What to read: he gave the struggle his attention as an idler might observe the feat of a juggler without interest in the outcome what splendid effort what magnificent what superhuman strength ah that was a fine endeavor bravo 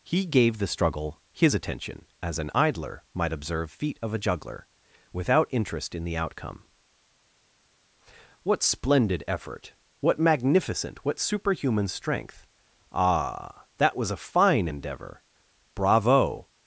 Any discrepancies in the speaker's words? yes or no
yes